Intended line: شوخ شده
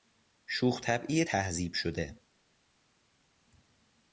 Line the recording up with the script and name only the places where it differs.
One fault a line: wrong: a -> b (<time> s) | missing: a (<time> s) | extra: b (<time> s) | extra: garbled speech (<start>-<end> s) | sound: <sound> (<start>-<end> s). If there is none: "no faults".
extra: طبعی تهذیب (0.8 s)